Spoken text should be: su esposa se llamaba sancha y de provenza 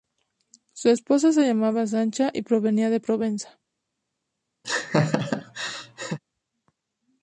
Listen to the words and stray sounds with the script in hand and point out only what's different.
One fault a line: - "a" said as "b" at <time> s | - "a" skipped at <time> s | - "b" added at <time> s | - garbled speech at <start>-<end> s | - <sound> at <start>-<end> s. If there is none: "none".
- "provenía" added at 2.4 s
- laugh at 4.6-6.2 s